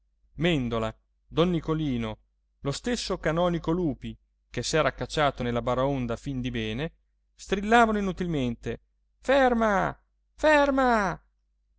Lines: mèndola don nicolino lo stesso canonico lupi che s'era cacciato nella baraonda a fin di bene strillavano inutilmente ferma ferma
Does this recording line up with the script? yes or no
yes